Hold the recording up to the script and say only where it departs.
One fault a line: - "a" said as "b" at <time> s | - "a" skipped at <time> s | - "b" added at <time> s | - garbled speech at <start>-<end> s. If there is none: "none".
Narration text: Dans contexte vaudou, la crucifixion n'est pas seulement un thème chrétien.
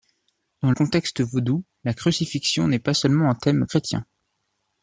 none